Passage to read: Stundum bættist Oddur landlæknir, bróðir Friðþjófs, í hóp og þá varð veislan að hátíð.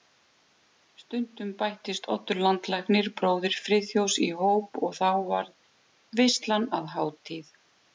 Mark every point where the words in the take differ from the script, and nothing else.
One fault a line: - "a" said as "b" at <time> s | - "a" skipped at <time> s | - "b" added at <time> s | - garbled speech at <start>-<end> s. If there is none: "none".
none